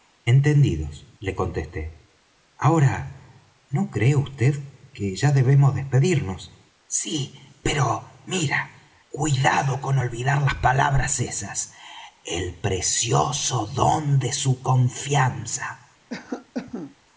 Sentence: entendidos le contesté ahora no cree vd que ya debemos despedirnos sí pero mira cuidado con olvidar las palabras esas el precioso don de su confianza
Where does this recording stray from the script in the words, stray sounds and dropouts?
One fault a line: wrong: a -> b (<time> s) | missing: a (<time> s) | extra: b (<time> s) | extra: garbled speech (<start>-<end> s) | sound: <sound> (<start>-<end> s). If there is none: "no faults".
sound: cough (16.1-17.0 s)